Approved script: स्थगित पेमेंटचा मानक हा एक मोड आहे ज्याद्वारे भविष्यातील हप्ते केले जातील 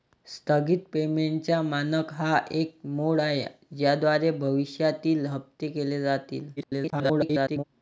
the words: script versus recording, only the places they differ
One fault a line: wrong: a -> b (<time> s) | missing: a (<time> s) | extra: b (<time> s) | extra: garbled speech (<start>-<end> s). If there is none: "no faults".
extra: garbled speech (6.6-7.6 s)